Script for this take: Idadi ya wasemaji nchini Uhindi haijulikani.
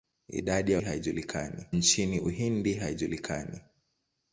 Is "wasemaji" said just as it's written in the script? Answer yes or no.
no